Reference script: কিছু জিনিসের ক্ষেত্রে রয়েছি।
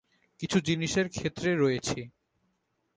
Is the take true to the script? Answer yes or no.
yes